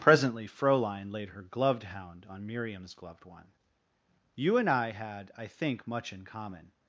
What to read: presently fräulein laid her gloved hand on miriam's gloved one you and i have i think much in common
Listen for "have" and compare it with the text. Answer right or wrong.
wrong